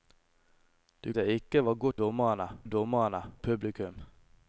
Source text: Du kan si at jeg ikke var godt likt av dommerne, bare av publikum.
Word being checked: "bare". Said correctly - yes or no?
no